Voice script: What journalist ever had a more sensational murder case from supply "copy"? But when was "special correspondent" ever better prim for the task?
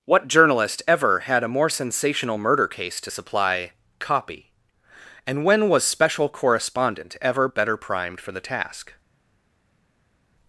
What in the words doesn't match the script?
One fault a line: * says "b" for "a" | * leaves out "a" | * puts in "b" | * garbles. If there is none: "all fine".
* says "to" for "from"
* says "And" for "But"
* says "primed" for "prim"